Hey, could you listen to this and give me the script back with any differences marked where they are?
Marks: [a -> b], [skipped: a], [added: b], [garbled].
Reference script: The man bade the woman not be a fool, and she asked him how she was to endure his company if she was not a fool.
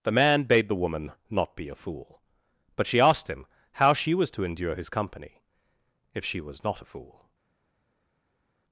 The man bade the woman not be a fool, [and -> but] she asked him how she was to endure his company if she was not a fool.